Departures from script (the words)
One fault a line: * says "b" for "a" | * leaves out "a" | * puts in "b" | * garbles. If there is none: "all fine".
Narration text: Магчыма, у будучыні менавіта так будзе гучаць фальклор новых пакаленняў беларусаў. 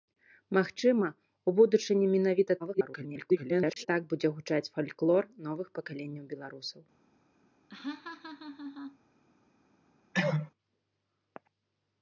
* garbles